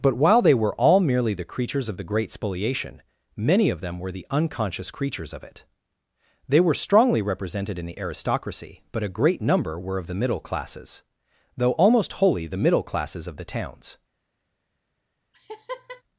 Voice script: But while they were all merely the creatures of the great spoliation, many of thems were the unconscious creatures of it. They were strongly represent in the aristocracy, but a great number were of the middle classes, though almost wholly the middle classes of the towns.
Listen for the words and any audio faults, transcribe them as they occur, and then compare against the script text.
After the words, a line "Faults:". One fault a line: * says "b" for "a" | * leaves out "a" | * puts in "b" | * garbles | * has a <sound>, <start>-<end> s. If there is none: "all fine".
But while they were all merely the creatures of the great spoliation, many of them were the unconscious creatures of it. They were strongly represented in the aristocracy, but a great number were of the middle classes, though almost wholly the middle classes of the towns.
Faults:
* says "them" for "thems"
* says "represented" for "represent"
* has a laugh, 15.3-16.0 s